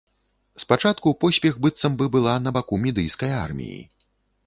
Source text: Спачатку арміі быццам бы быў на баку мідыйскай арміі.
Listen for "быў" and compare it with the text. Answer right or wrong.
wrong